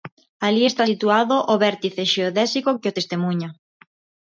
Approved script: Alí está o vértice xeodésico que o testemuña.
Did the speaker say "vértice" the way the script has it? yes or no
yes